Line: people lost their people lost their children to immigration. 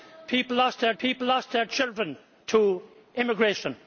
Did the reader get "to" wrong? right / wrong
right